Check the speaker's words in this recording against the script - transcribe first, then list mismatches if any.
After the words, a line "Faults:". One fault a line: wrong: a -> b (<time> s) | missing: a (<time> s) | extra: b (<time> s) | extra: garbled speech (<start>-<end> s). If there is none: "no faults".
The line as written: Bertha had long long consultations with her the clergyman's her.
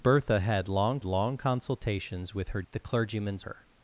Bertha had long long consultations with her the clergyman's her.
Faults:
no faults